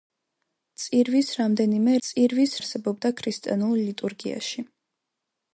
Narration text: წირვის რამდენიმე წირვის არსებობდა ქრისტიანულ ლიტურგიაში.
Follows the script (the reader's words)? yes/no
yes